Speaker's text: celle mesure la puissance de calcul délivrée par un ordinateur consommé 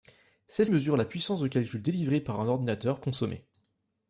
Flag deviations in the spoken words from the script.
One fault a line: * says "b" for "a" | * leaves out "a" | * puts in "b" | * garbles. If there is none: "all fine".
all fine